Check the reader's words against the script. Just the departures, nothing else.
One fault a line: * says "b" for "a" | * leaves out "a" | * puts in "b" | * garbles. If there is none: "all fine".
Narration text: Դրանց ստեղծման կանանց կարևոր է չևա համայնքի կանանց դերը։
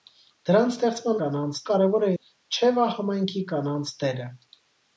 all fine